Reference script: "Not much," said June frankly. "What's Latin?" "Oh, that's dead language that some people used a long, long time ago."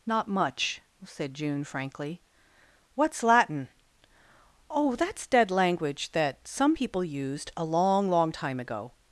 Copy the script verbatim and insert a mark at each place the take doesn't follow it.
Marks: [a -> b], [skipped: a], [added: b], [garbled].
"Not much," said June frankly. "What's Latin?" "Oh, that's dead language that some people used a long, long time ago."